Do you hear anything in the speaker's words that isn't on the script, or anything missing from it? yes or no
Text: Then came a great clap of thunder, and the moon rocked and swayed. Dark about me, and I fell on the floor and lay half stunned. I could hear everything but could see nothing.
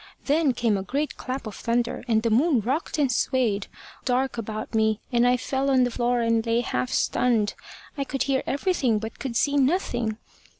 no